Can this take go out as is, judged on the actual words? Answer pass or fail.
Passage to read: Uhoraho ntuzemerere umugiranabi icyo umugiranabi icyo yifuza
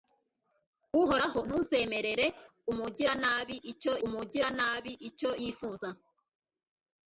pass